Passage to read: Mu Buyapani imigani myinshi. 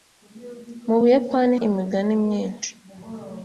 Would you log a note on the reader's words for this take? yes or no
no